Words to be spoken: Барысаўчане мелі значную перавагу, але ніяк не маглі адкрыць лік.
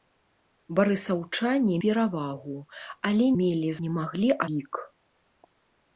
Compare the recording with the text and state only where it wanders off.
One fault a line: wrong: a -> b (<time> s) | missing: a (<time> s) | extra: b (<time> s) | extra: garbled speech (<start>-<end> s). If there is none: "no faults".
missing: мелі значную (1.8 s)
wrong: ніяк -> мелі (3.4 s)
missing: адкрыць (4.3 s)